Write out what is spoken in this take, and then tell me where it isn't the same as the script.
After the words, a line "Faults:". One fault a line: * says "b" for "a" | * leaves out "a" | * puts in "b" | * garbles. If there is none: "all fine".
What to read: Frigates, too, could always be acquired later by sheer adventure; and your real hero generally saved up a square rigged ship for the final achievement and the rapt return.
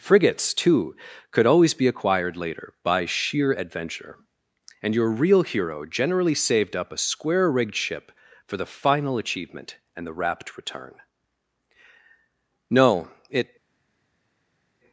Frigates, too, could always be acquired later by sheer adventure; and your real hero generally saved up a square rigged ship for the final achievement and the rapt return. No, it
Faults:
* puts in "No it"